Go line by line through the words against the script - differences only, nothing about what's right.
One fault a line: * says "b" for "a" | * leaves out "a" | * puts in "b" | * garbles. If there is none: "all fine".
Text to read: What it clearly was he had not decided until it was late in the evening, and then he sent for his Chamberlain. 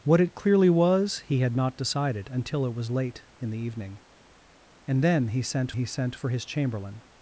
* puts in "he sent"